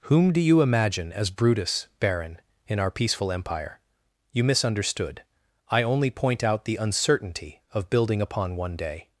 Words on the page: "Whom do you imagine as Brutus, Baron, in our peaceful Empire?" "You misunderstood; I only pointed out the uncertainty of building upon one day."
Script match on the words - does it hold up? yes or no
no